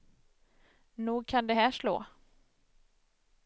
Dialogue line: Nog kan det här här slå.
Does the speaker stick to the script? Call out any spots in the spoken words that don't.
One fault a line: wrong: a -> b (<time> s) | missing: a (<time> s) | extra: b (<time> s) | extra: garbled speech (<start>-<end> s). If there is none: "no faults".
missing: här (1.7 s)